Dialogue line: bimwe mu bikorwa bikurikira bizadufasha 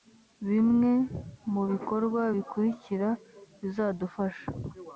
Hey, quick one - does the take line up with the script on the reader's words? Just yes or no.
yes